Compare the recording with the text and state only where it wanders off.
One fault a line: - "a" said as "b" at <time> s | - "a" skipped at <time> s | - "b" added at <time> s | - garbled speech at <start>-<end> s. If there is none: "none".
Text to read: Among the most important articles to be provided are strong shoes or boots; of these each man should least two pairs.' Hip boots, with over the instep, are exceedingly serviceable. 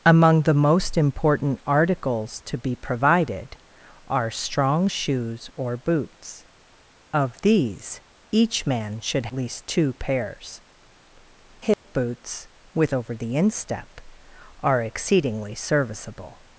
none